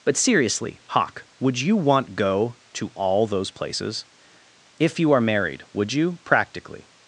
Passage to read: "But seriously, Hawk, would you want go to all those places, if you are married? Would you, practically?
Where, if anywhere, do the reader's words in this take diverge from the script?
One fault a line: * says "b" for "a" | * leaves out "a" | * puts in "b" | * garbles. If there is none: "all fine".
all fine